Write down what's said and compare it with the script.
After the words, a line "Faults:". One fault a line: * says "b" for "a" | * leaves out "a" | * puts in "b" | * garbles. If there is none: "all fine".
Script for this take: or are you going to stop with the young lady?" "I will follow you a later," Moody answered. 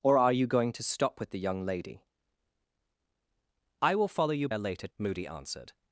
or are you going to stop with the young lady?" "I will follow you a later," Moody answered.
Faults:
all fine